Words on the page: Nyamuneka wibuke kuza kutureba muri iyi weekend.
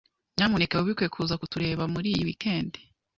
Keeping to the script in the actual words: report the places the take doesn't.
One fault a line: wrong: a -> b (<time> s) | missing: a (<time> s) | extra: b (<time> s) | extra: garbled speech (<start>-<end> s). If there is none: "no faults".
no faults